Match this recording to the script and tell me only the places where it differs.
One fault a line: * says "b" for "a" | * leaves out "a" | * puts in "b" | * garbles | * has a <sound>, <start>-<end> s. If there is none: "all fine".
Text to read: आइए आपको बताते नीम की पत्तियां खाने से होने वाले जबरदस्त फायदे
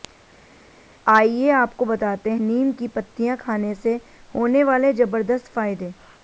all fine